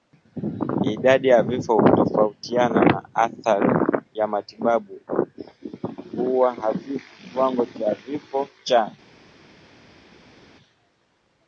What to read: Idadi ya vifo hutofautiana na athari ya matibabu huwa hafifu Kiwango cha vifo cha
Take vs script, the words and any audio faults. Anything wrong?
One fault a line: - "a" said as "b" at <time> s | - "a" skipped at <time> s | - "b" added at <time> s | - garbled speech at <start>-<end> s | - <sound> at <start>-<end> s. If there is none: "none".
none